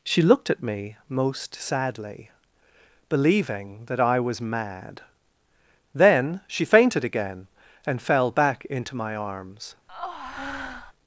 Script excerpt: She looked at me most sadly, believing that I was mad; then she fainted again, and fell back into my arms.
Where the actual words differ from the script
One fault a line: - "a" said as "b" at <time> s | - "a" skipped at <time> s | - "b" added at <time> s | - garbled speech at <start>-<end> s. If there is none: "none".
none